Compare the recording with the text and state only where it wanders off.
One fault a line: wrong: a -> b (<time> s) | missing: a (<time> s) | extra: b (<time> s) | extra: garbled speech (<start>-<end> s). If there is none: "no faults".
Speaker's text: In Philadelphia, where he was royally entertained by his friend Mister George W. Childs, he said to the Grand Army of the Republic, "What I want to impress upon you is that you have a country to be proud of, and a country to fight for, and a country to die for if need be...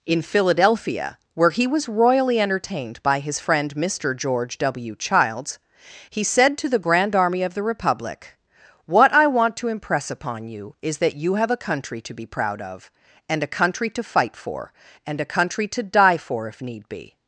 no faults